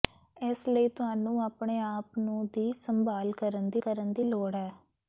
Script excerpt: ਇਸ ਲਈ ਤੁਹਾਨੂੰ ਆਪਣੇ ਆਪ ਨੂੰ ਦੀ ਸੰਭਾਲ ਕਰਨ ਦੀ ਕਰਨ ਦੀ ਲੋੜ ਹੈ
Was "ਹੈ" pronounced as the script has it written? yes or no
yes